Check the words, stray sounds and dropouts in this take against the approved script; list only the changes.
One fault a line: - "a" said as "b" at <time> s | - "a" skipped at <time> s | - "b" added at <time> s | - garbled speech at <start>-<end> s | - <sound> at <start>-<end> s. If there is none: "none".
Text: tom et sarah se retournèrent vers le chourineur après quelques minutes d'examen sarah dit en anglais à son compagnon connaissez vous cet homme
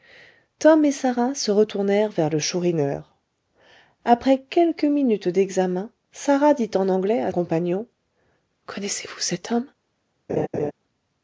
- "son" skipped at 7.3 s
- laugh at 10.3-10.7 s